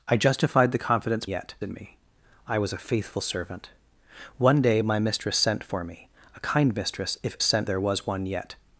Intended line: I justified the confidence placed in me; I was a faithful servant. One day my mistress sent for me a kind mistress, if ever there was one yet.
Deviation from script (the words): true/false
true